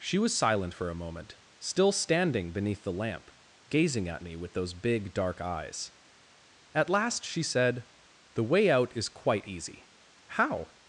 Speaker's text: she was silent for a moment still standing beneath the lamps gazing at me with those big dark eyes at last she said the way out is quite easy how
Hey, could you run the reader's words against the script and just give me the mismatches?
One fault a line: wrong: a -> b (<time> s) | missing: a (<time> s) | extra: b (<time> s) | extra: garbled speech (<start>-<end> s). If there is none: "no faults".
wrong: lamps -> lamp (2.9 s)